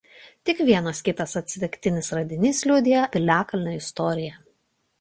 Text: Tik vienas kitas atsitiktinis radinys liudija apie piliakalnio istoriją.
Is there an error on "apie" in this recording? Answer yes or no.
yes